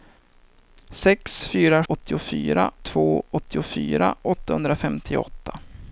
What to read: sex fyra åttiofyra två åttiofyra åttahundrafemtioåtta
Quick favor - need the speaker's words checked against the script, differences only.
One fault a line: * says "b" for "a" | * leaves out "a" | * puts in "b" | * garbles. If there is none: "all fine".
all fine